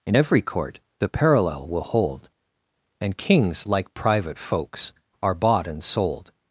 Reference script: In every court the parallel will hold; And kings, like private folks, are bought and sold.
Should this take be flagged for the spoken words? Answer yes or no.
no